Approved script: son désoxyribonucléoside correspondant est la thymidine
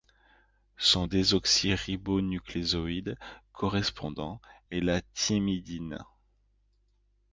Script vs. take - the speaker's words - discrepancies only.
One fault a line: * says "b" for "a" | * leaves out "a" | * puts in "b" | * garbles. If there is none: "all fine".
all fine